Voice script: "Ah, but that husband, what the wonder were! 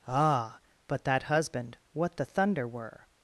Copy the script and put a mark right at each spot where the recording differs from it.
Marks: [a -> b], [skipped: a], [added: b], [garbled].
"Ah, but that husband, what the [wonder -> thunder] were!